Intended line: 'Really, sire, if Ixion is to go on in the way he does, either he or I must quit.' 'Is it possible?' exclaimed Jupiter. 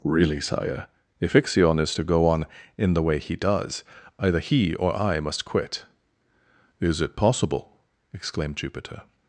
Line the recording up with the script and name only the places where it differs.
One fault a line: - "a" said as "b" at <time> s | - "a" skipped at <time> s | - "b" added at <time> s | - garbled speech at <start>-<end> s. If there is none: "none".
none